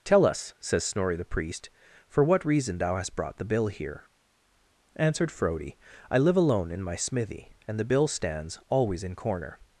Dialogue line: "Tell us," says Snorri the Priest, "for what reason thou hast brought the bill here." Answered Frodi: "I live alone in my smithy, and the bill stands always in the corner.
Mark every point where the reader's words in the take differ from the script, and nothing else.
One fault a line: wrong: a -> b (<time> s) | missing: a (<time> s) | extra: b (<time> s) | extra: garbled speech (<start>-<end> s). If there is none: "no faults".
missing: the (9.2 s)